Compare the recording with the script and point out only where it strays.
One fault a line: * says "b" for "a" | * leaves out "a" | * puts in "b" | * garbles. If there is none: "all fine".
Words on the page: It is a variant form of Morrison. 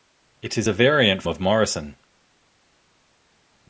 * leaves out "form"